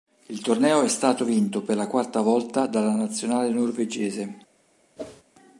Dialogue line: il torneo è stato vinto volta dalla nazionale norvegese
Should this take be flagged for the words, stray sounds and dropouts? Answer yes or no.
yes